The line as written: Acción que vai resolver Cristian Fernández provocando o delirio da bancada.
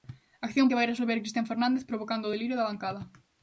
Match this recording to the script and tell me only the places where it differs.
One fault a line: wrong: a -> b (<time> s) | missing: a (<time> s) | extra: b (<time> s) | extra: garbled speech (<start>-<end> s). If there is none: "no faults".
no faults